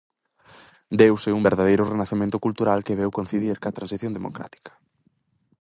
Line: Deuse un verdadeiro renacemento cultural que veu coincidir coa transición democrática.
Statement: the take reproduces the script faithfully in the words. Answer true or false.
true